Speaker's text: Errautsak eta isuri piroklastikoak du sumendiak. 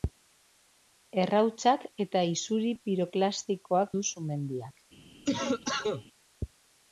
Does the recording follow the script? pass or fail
pass